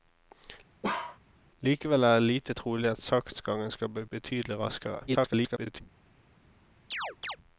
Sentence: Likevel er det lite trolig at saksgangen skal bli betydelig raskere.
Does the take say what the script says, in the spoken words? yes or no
no